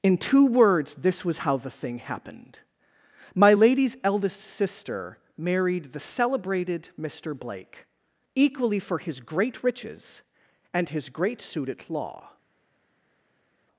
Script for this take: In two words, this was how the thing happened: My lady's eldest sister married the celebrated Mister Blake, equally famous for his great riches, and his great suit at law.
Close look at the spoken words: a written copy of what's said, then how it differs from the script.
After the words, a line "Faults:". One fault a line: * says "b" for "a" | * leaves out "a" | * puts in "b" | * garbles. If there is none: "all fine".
In two words, this was how the thing happened: My lady's eldest sister married the celebrated Mister Blake, equally for his great riches, and his great suit at law.
Faults:
* leaves out "famous"